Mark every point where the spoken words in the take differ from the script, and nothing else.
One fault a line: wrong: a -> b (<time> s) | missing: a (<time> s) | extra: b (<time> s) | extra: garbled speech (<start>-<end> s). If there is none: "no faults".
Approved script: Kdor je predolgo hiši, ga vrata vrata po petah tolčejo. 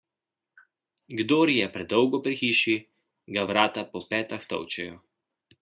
extra: pri (2.2 s)
missing: vrata (3.9 s)